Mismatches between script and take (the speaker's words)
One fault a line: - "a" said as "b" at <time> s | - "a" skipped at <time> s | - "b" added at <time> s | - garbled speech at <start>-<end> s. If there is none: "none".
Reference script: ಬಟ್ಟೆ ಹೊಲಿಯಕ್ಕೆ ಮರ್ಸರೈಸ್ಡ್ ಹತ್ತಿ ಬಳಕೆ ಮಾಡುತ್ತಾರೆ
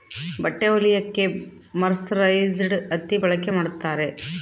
none